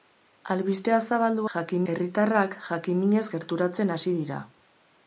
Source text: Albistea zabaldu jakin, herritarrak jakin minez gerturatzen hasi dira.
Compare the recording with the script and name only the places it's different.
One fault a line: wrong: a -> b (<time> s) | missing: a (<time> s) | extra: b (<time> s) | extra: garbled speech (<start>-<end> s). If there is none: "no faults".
no faults